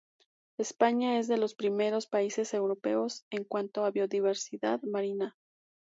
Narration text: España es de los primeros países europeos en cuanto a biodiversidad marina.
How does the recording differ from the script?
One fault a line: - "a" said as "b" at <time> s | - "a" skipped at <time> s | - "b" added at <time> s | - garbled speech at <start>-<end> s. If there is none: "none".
none